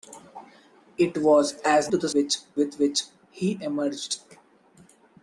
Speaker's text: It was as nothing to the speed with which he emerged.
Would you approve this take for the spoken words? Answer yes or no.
no